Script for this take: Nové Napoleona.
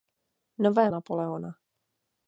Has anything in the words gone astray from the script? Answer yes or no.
no